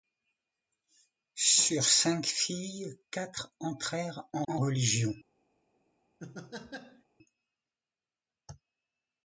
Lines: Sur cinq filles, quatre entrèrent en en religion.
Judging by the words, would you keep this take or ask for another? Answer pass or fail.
pass